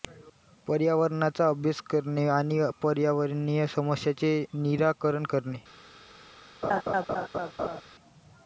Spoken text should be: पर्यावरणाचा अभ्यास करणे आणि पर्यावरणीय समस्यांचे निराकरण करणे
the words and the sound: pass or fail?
fail